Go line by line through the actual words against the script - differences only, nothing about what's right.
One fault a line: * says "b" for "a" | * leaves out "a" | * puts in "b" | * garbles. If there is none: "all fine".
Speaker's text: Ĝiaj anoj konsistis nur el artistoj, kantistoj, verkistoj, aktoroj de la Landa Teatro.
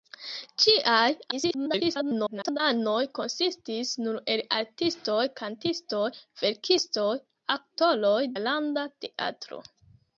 * garbles
* leaves out "de"